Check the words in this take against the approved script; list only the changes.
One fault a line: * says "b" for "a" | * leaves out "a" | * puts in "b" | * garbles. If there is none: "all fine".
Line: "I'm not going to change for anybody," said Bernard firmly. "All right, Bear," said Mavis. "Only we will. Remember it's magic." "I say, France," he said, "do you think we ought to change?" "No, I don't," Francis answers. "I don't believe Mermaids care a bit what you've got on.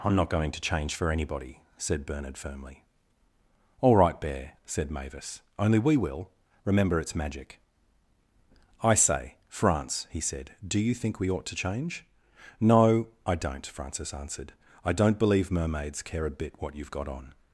* says "answered" for "answers"